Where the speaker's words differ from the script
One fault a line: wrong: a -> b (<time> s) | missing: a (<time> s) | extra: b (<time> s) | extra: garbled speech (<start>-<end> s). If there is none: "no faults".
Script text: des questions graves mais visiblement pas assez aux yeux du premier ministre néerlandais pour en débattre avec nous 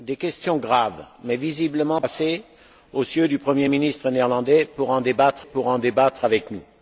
missing: pas (2.0 s)
extra: pour en débattre (5.4 s)